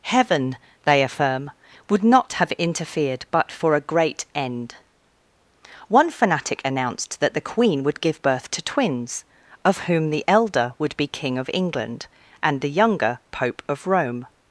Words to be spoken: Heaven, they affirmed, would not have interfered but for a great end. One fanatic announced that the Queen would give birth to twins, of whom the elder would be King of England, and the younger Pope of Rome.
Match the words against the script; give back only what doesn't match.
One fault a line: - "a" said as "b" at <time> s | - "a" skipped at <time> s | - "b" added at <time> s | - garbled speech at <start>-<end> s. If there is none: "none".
- "affirmed" said as "affirm" at 1.0 s